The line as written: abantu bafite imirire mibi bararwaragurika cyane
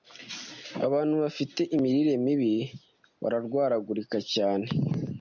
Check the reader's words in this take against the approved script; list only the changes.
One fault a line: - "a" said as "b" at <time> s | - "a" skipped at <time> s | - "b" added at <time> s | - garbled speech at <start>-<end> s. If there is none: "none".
none